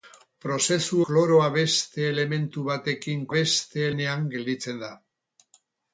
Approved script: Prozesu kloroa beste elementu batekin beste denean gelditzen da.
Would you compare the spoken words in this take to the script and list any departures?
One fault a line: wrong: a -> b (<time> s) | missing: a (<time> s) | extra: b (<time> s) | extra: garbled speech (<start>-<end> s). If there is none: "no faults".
no faults